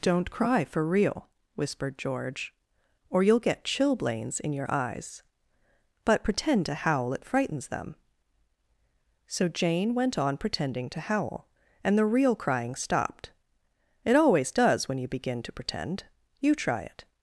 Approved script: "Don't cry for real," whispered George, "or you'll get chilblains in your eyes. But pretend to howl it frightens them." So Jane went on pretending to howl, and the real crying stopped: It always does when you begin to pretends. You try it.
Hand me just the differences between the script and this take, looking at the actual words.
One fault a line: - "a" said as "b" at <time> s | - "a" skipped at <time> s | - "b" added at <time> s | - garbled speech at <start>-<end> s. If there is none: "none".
- "pretends" said as "pretend" at 15.5 s